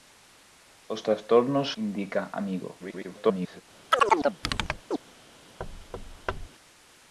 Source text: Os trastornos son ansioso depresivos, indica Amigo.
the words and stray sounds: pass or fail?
fail